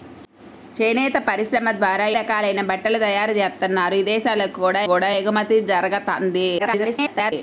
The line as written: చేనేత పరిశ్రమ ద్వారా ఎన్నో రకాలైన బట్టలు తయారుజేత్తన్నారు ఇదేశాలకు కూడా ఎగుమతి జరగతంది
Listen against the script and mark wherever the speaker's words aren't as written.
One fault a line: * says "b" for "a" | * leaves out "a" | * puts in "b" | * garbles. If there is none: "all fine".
* leaves out "ఎన్నో"
* puts in "కూడా"
* garbles